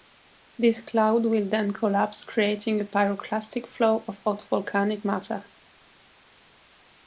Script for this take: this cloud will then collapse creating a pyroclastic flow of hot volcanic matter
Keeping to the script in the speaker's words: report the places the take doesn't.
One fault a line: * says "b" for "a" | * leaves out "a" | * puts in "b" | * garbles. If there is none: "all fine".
all fine